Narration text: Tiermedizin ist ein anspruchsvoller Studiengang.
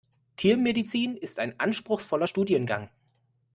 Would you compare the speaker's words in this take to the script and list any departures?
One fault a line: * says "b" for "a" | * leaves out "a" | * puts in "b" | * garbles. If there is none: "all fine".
all fine